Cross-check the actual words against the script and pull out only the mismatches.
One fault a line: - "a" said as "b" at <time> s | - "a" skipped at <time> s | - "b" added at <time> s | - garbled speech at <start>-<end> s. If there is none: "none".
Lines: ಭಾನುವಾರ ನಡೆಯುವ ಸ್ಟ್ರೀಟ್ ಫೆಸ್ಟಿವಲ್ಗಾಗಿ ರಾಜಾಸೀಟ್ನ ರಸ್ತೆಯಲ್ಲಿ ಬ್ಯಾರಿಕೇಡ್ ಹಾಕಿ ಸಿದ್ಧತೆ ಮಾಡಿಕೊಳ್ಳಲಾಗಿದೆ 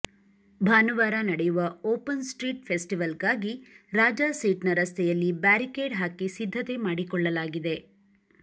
- "ಓಪನ್" added at 1.9 s